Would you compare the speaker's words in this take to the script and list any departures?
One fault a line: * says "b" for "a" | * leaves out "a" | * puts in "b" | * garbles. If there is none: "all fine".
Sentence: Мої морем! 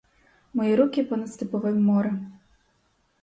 * puts in "руки понад степовим"